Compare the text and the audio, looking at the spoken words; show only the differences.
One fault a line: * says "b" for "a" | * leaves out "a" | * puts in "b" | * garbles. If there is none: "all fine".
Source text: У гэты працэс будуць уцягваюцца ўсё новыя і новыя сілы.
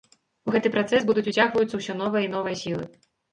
all fine